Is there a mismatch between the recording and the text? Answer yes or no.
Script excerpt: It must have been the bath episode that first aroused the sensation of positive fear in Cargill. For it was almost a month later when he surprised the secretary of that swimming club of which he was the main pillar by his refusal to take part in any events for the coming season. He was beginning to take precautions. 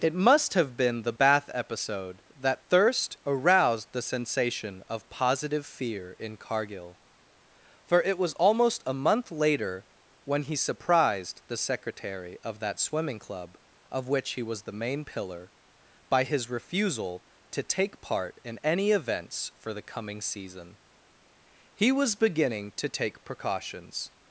yes